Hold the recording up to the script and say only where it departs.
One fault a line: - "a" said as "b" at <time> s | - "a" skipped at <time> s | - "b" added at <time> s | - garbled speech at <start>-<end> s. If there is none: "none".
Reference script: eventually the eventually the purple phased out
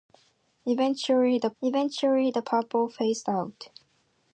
none